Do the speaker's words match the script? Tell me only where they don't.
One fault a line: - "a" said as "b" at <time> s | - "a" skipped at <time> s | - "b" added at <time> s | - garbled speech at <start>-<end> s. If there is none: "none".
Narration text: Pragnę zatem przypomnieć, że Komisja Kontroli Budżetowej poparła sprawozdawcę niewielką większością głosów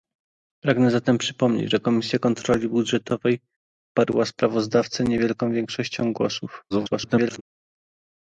- garbled speech at 6.7-7.4 s